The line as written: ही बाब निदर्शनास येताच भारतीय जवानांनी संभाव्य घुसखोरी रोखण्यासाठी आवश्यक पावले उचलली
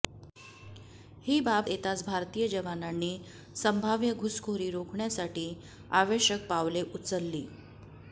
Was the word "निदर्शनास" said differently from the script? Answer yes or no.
yes